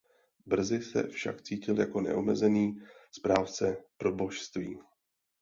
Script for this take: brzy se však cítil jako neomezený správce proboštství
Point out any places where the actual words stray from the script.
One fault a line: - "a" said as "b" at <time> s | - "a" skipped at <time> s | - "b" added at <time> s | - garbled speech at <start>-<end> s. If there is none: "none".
none